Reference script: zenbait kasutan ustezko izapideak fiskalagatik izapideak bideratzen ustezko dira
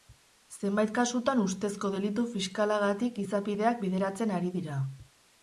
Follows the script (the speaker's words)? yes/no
no